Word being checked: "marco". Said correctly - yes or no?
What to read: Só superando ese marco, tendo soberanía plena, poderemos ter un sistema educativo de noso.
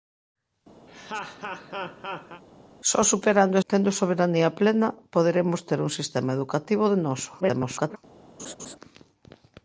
no